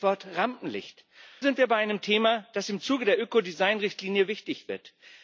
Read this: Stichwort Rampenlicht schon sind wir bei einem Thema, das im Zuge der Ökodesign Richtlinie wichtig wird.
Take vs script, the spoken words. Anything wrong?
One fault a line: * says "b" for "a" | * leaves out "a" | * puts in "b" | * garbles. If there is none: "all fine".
* leaves out "schon"